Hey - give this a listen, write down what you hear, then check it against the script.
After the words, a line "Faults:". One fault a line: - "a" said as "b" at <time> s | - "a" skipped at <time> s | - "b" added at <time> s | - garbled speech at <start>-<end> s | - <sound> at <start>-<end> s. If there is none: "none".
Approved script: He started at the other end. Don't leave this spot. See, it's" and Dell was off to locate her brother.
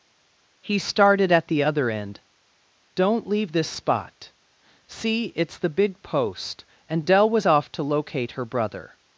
He started at the other end. Don't leave this spot. See, it's the big post" and Dell was off to locate her brother.
Faults:
- "the big post" added at 5.6 s